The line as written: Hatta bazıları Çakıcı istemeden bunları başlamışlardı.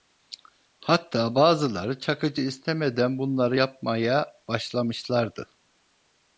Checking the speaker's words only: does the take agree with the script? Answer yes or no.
no